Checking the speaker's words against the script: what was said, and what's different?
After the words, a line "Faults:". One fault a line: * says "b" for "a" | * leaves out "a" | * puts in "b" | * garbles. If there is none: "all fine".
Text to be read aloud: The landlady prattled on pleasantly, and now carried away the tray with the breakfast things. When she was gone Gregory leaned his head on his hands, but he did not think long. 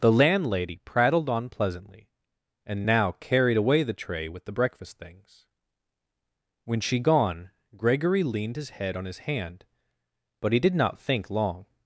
The landlady prattled on pleasantly, and now carried away the tray with the breakfast things. When she gone Gregory leaned his head on his hand, but he did not think long.
Faults:
* leaves out "was"
* says "hand" for "hands"